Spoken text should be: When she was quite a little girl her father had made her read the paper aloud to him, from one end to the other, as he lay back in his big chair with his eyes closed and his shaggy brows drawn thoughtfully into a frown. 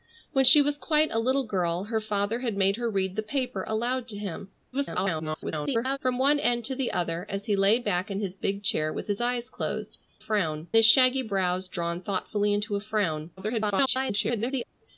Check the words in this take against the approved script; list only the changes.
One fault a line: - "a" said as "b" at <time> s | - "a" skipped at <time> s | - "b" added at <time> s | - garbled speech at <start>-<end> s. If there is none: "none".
- garbled speech at 4.7-6.0 s
- "and" said as "frown" at 10.2 s
- garbled speech at 13.4-14.6 s